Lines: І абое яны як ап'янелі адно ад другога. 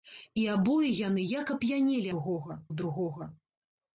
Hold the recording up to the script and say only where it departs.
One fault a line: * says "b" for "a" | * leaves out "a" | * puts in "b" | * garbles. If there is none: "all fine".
* says "другога" for "адно"